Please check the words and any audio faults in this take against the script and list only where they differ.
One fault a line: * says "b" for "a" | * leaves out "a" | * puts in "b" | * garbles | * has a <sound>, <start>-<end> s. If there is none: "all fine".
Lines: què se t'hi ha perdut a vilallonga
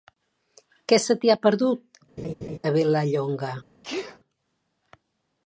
* has a laugh, 2.2-2.6 s
* has a sneeze, 3.8-4.2 s